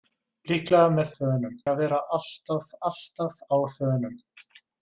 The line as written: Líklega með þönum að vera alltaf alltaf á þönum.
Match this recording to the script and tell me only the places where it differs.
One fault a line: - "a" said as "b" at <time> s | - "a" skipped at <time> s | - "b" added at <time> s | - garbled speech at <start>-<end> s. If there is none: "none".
none